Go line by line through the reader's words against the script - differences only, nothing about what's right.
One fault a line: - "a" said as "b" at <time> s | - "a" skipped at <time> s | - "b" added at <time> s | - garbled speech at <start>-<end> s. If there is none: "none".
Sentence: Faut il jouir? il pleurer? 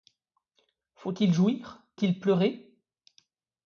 none